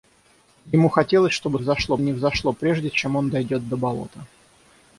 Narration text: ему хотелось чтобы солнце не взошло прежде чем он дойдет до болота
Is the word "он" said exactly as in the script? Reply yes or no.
yes